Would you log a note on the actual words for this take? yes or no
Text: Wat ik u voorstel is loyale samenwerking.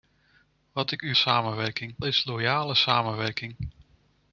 yes